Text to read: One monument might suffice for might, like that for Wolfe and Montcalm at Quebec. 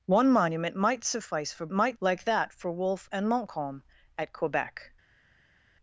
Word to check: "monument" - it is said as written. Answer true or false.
true